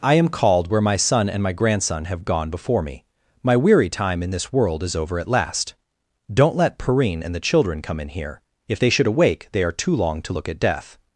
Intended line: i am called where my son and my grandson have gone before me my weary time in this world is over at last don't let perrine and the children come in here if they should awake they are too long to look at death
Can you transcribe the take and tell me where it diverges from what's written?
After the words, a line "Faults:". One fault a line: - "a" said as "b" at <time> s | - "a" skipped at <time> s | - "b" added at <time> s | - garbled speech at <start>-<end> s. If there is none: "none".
i am called where my son and my grandson have gone before me my weary time in this world is over at last don't let perrine and the children come in here if they should awake they are too long to look at death
Faults:
none